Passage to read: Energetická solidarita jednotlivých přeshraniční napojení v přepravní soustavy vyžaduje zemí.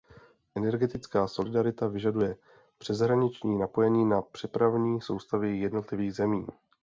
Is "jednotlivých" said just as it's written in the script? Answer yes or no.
no